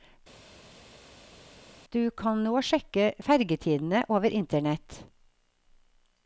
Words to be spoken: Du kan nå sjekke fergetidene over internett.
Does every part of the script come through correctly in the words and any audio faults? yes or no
yes